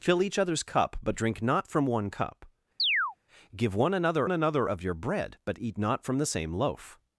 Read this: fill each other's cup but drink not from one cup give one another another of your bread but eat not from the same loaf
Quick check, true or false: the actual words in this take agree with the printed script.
true